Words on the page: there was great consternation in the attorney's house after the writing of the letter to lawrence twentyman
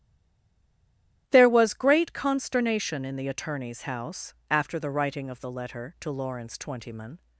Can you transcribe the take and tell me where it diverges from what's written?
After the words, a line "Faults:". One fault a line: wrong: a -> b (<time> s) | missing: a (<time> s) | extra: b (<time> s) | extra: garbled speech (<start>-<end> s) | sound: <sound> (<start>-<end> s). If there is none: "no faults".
there was great consternation in the attorney's house after the writing of the letter to lawrence twentyman
Faults:
no faults